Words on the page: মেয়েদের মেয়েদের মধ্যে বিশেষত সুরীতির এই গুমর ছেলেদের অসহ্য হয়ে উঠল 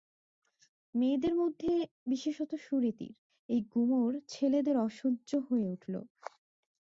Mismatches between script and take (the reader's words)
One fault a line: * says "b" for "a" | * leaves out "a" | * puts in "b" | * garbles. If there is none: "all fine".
* leaves out "মেয়েদের"